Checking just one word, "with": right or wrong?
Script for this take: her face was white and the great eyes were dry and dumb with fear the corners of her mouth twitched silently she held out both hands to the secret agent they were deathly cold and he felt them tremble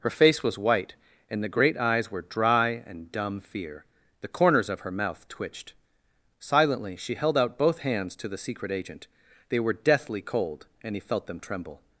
wrong